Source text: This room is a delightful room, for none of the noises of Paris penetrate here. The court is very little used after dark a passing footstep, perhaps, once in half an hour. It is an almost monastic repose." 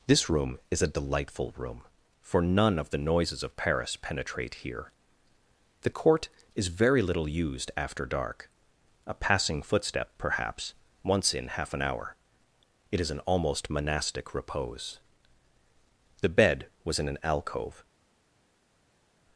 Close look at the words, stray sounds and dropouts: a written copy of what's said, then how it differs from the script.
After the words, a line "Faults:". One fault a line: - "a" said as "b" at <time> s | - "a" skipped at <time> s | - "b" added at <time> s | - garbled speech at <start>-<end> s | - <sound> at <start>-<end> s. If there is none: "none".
This room is a delightful room, for none of the noises of Paris penetrate here. The court is very little used after dark a passing footstep, perhaps, once in half an hour. It is an almost monastic repose." The bed was in an alcove
Faults:
- "The bed was in an alcove" added at 16.2 s